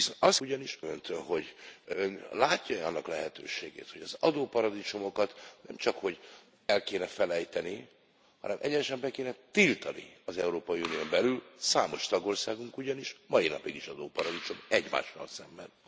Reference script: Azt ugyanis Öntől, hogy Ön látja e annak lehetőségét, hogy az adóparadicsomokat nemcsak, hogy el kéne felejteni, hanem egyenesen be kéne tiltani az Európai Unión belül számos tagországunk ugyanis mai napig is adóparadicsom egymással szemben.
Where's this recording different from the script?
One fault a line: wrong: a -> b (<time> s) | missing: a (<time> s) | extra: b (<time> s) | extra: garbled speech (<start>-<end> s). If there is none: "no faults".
no faults